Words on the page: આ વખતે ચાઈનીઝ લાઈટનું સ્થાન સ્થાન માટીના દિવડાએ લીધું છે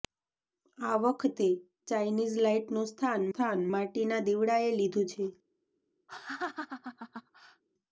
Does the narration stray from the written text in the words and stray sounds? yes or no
yes